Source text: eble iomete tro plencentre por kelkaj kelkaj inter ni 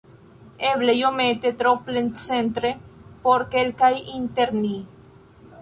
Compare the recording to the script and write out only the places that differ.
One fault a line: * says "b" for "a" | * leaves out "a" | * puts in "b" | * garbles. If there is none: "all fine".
* leaves out "kelkaj"